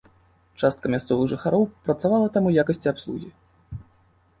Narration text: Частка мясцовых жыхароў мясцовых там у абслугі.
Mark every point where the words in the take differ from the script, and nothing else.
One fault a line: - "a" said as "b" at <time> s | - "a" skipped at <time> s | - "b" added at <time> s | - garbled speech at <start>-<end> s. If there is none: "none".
- "мясцовых" said as "працавала" at 1.9 s
- "якасці" added at 2.6 s